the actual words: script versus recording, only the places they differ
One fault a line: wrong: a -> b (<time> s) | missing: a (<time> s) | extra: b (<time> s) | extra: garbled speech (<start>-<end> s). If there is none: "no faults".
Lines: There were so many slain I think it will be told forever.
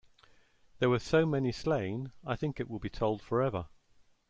no faults